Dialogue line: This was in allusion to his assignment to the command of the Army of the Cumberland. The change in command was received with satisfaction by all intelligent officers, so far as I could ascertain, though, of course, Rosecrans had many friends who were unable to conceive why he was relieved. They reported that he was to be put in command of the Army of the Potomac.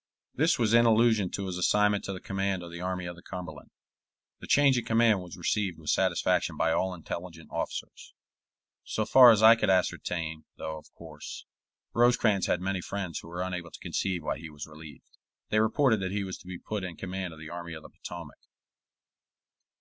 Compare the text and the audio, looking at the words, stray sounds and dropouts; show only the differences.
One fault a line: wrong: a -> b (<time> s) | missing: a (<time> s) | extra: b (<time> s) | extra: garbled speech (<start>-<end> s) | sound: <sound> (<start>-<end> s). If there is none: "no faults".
no faults